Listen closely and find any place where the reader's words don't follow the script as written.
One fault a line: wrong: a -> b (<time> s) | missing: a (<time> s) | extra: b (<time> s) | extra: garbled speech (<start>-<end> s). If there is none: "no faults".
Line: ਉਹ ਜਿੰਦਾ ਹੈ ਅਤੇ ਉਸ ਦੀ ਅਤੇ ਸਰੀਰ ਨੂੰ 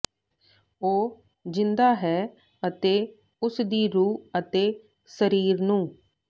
extra: ਰੂਹ (3.9 s)